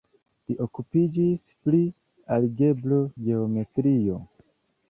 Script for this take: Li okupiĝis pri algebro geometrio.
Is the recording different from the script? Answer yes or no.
no